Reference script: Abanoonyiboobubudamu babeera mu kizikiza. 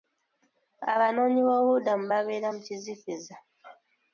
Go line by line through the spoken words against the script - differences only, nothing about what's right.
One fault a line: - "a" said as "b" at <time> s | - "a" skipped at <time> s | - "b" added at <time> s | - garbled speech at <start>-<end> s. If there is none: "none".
none